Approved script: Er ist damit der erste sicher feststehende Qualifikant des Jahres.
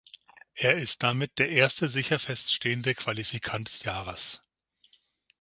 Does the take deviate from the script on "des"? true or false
true